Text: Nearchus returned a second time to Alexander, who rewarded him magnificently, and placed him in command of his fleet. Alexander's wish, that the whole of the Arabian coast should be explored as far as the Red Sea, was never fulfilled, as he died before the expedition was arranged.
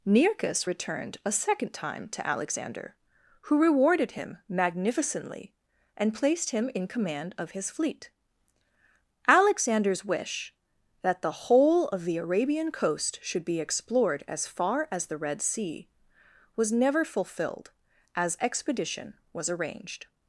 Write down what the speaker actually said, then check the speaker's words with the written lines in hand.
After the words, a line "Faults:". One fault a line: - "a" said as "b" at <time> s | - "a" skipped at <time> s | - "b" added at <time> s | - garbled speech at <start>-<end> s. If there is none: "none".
Nearchus returned a second time to Alexander, who rewarded him magnificently, and placed him in command of his fleet. Alexander's wish, that the whole of the Arabian coast should be explored as far as the Red Sea, was never fulfilled, as expedition was arranged.
Faults:
- "he died before the" skipped at 18.4 s